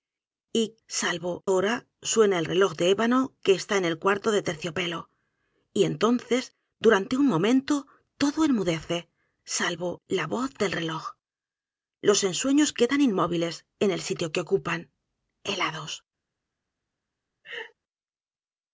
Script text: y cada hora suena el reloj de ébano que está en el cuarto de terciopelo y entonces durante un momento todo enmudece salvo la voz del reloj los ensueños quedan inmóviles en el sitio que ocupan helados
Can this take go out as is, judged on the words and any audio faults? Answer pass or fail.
fail